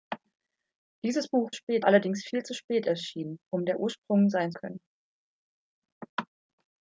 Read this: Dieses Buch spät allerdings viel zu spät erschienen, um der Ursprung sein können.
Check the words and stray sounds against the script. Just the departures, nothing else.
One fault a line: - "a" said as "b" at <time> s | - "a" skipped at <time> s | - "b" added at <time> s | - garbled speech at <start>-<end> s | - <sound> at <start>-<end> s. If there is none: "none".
none